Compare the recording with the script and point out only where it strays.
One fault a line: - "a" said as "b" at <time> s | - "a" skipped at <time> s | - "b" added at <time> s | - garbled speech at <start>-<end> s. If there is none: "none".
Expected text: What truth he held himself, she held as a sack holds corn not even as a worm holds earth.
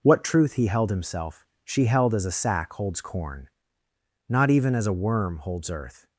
none